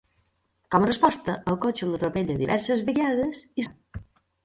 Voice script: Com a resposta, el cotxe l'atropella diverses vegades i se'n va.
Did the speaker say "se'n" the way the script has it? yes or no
no